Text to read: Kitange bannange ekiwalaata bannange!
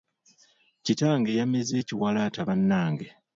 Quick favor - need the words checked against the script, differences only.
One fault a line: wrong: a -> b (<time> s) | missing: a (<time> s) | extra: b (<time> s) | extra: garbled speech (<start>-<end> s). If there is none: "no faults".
wrong: bannange -> yameze (1.4 s)